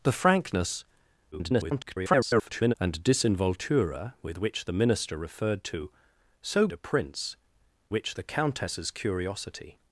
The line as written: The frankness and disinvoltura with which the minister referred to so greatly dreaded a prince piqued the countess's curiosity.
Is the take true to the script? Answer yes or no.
no